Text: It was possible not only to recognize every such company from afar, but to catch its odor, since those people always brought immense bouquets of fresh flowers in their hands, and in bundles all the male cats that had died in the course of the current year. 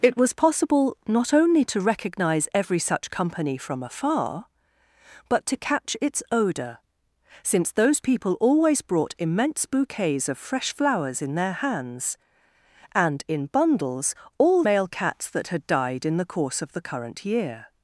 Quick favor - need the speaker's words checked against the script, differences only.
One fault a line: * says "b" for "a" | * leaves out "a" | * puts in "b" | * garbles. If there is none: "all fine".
* leaves out "the"